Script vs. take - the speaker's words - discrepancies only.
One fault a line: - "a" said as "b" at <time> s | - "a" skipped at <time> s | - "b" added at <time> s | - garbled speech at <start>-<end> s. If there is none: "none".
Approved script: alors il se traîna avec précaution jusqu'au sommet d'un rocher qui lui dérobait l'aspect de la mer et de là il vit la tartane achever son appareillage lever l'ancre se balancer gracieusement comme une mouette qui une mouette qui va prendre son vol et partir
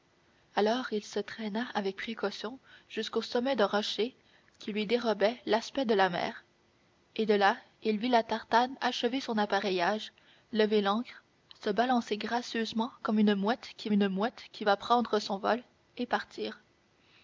none